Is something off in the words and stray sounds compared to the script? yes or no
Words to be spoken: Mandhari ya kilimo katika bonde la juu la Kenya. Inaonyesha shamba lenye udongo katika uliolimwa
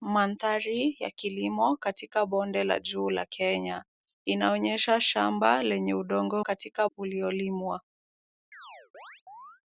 yes